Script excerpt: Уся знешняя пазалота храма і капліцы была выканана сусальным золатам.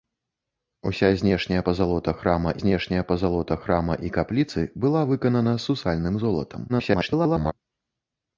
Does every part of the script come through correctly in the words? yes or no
no